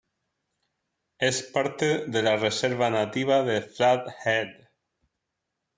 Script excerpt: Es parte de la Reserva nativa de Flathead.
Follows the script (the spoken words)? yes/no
yes